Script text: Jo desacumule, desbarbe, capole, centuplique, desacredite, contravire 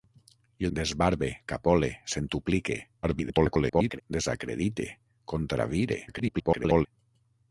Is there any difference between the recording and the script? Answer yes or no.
yes